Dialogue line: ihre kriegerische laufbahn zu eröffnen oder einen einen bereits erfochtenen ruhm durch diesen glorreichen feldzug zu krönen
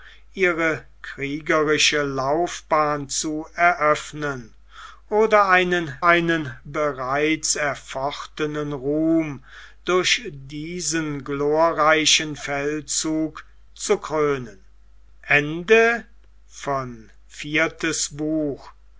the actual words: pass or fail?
pass